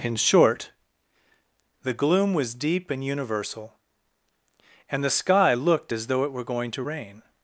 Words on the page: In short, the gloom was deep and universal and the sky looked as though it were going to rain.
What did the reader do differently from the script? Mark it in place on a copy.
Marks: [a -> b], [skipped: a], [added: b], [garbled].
In short, the gloom was deep and universal and the sky looked as though it were going to rain.